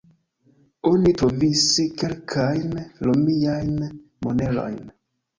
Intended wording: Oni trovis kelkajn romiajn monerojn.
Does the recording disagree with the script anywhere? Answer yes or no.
no